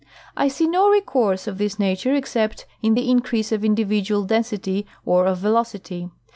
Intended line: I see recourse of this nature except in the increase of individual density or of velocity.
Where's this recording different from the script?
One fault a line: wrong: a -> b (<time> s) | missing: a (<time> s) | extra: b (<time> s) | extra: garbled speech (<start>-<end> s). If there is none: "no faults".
extra: no (0.7 s)